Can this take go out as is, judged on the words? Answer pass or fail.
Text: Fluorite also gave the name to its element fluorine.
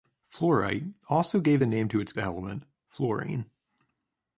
pass